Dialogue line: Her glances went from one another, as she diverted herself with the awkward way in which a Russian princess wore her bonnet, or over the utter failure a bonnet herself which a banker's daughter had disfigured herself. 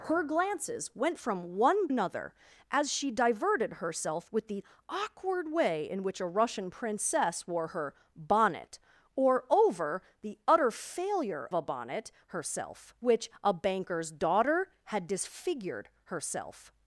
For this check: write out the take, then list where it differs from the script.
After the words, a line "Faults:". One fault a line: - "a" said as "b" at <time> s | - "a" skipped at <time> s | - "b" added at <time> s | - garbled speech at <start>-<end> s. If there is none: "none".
Her glances went from one another, as she diverted herself with the awkward way in which a Russian princess wore her bonnet, or over the utter failure a bonnet herself which a banker's daughter had disfigured herself.
Faults:
none